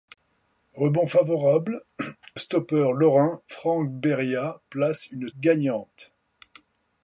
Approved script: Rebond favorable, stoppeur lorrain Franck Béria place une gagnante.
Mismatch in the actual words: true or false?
false